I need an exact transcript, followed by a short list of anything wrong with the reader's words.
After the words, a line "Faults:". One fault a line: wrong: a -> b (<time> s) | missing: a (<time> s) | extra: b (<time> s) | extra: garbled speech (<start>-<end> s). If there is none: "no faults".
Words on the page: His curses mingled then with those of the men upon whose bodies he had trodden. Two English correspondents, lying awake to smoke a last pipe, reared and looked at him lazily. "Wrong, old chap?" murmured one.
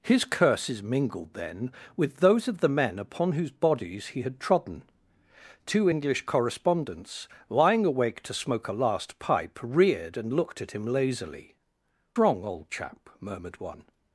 His curses mingled then with those of the men upon whose bodies he had trodden. Two English correspondents, lying awake to smoke a last pipe, reared and looked at him lazily. "Wrong, old chap?" murmured one.
Faults:
no faults